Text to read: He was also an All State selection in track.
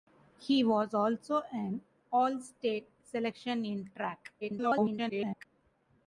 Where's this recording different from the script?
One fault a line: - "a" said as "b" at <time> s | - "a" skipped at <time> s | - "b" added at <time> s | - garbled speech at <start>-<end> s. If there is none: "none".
- garbled speech at 4.4-5.4 s